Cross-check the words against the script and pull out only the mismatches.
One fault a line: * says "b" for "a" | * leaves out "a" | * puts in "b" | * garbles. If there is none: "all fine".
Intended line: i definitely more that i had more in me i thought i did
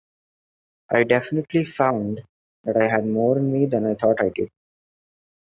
* says "found" for "more"
* puts in "than"